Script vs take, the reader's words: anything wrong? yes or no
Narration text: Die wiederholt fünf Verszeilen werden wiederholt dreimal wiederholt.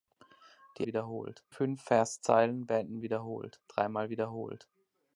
no